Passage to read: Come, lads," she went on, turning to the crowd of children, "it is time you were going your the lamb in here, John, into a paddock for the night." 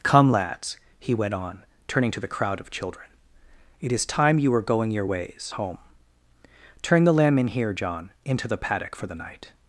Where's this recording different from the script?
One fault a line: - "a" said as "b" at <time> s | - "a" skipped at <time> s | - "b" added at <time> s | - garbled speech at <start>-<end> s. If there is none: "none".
- "she" said as "he" at 1.0 s
- "ways home Turn" added at 5.0 s
- "a" said as "the" at 8.5 s